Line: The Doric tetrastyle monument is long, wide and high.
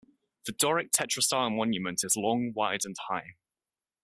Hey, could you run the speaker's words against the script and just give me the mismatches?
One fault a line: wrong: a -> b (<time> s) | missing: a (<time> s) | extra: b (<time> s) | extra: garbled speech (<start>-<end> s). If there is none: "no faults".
no faults